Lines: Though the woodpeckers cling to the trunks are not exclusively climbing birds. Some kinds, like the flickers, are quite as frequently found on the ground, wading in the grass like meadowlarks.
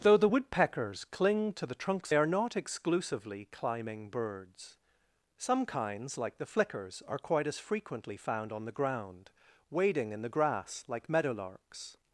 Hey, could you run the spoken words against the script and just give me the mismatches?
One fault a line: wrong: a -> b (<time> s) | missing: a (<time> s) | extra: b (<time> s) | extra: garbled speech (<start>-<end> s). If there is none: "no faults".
no faults